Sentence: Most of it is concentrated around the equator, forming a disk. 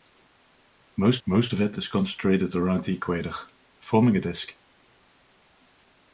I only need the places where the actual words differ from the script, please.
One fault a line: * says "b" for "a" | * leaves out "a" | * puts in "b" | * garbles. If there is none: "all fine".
* puts in "most"